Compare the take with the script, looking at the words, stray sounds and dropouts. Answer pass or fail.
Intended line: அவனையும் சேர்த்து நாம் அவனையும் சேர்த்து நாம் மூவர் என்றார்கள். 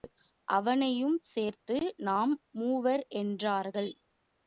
fail